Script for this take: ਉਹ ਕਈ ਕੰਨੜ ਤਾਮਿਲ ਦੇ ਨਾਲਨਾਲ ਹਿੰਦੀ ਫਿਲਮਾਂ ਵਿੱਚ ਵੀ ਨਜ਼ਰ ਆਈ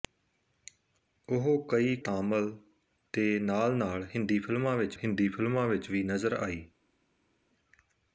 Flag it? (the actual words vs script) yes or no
yes